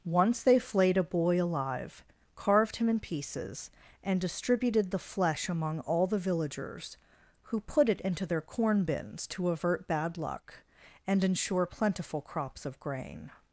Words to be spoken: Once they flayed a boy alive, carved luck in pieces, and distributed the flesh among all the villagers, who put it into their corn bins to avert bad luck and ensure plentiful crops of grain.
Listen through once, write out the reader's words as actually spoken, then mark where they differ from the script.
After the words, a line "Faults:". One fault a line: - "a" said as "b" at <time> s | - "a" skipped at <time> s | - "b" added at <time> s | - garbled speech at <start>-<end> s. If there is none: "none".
Once they flayed a boy alive, carved him in pieces, and distributed the flesh among all the villagers, who put it into their corn bins to avert bad luck and ensure plentiful crops of grain.
Faults:
- "luck" said as "him" at 2.8 s